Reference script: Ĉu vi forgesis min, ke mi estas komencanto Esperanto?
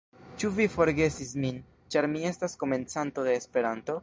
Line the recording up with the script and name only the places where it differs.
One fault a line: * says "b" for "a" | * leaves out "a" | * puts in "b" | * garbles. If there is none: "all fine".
* says "ĉar" for "ke"
* puts in "de"